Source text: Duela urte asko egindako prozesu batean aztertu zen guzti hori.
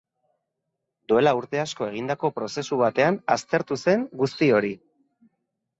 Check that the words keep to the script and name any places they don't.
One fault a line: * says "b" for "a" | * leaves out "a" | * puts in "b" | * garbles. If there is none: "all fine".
all fine